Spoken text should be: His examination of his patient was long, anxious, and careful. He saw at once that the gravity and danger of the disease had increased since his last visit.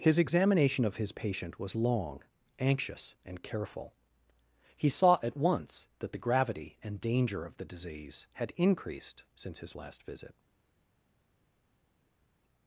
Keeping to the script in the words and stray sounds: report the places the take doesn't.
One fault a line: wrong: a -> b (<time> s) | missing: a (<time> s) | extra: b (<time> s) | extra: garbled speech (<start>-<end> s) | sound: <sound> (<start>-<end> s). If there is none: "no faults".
no faults